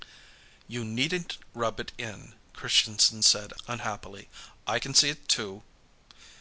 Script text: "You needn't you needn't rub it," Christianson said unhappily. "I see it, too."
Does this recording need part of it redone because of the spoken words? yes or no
yes